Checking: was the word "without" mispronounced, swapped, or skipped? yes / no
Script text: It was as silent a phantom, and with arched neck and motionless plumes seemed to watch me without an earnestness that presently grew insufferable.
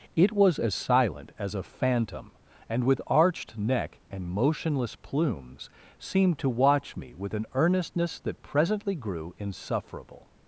yes